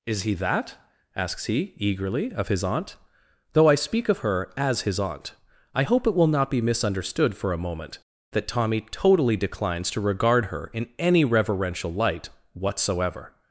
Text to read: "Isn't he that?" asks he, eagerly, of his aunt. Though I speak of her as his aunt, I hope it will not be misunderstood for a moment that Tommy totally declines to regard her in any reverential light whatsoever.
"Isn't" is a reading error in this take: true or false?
true